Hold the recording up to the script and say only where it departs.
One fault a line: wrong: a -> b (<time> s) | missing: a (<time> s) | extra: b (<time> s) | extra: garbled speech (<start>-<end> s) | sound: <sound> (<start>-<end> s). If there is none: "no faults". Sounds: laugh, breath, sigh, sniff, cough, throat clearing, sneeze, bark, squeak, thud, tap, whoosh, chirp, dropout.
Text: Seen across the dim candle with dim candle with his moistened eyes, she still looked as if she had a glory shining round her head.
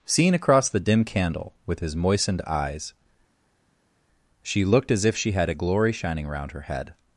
missing: dim candle with (1.8 s)
missing: still (4.6 s)